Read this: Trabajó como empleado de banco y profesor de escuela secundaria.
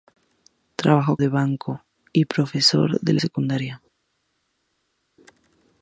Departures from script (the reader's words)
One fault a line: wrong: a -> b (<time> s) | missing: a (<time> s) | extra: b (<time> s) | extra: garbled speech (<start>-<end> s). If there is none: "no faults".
missing: como empleado (1.2 s)
missing: escuela (3.1 s)